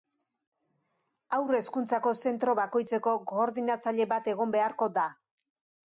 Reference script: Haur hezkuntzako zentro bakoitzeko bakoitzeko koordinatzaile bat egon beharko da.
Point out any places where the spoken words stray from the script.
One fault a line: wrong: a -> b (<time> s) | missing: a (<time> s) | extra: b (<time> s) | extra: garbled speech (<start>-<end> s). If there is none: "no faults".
missing: bakoitzeko (3.2 s)